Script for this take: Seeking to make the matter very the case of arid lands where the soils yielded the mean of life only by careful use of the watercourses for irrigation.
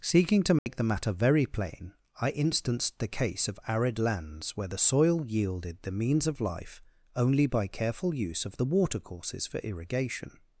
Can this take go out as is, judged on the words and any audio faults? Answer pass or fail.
fail